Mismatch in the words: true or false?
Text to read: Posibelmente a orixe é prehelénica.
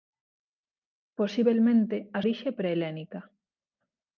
false